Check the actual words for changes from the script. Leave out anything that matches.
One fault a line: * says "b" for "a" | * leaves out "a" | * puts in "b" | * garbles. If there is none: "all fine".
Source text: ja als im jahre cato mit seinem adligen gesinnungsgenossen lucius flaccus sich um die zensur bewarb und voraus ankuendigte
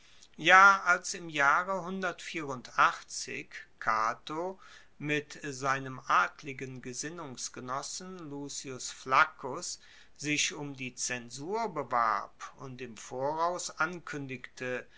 * puts in "im"